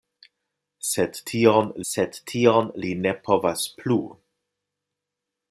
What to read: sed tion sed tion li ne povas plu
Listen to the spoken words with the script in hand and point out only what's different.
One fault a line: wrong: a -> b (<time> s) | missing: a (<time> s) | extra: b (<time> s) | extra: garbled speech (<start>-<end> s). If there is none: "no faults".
no faults